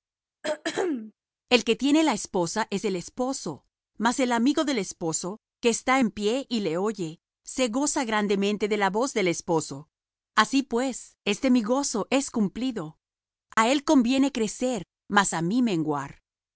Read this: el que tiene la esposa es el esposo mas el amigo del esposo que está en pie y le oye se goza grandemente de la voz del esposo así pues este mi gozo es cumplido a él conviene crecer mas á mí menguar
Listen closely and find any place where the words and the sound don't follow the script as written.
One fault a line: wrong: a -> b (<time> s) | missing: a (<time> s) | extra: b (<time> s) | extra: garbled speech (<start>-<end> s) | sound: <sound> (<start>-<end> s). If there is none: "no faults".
sound: throat clearing (0.4-1.1 s)
sound: dropout (13.5-13.6 s)